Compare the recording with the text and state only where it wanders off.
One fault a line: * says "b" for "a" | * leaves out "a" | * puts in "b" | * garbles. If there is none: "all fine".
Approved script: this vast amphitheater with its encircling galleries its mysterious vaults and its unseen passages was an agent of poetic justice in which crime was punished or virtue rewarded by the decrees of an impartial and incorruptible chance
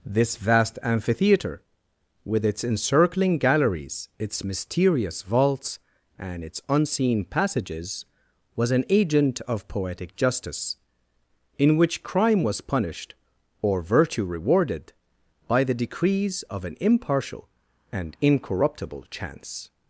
all fine